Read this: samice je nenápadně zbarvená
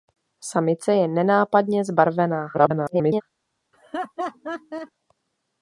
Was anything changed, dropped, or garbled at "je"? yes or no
no